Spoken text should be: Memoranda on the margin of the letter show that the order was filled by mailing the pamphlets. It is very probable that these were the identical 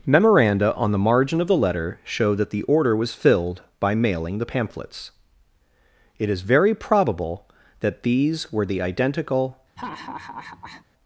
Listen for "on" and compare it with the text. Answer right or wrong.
right